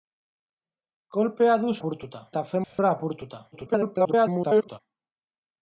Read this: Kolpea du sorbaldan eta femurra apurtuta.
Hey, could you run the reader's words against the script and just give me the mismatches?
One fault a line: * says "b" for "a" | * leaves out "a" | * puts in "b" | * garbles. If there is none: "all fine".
* says "apurtuta" for "sorbaldan"
* garbles